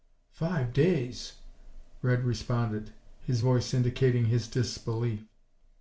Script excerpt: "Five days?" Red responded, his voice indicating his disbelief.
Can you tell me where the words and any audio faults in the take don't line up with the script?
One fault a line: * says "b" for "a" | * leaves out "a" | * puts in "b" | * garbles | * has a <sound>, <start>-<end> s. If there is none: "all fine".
all fine